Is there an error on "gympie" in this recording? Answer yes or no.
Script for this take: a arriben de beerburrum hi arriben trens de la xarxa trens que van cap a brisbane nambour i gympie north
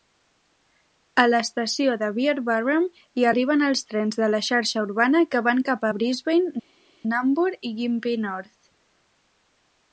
no